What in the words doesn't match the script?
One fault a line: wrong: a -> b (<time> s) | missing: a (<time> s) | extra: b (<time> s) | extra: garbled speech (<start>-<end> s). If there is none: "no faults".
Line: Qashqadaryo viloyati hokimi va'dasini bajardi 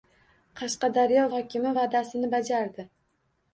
missing: viloyati (1.2 s)